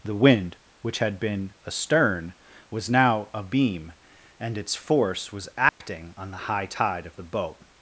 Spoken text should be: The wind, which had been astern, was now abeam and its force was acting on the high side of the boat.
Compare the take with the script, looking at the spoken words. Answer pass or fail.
fail